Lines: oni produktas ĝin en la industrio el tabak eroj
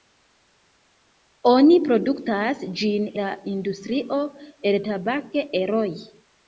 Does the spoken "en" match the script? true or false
false